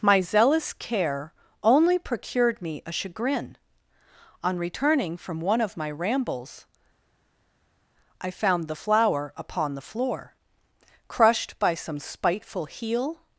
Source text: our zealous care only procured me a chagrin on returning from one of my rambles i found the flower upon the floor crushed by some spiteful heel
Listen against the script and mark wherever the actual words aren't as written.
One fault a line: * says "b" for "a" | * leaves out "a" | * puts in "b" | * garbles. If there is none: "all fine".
* says "my" for "our"